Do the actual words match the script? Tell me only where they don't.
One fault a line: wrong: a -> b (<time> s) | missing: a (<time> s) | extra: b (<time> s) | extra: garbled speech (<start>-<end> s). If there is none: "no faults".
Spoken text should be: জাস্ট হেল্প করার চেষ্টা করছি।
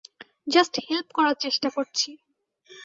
no faults